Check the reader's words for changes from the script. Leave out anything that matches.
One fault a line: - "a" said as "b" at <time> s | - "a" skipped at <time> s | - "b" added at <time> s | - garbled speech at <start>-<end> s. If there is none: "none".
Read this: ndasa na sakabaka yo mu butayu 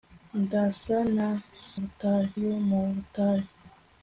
- "sakabaka" said as "butayu" at 1.8 s